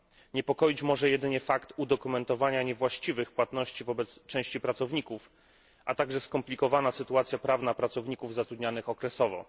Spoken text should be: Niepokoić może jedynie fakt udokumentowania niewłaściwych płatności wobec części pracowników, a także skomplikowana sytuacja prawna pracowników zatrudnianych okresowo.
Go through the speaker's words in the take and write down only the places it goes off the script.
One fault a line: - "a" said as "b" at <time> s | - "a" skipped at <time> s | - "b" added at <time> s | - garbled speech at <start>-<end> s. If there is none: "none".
none